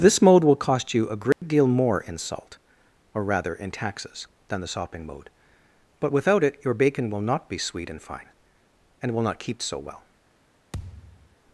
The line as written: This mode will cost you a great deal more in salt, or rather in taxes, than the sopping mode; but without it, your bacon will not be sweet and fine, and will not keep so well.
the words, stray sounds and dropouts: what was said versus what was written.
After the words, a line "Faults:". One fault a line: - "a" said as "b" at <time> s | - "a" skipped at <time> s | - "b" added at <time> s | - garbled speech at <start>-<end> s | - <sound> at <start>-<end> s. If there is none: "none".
This mode will cost you a great deal more in salt, or rather in taxes, than the sopping mode; but without it, your bacon will not be sweet and fine, and will not keep so well.
Faults:
- dropout at 1.3-1.4 s
- thud at 10.7-11.4 s